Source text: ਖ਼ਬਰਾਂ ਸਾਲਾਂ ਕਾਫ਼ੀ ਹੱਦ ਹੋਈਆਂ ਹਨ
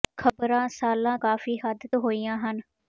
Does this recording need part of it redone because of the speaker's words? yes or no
no